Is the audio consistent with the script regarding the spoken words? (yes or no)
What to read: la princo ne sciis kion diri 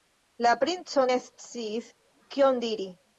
yes